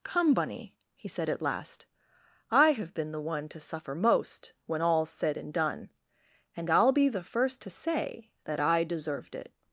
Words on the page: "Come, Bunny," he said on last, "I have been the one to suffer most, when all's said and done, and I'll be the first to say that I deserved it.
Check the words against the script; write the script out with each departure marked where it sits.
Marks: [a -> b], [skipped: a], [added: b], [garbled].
"Come, Bunny," he said [on -> at] last, "I have been the one to suffer most, when all's said and done, and I'll be the first to say that I deserved it.